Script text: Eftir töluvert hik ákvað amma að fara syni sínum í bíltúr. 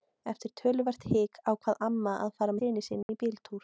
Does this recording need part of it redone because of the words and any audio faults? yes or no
yes